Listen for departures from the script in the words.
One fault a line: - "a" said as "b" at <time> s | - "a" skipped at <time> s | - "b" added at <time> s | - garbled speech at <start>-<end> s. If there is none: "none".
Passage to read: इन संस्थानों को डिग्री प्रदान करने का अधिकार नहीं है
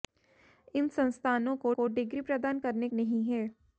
- "को" added at 1.7 s
- "का अधिकार" skipped at 2.9 s